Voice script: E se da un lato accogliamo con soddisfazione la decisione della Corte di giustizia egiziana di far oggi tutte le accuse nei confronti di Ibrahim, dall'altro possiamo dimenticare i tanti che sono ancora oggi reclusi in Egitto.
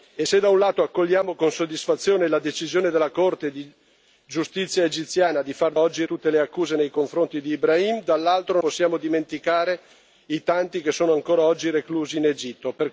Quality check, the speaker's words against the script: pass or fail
pass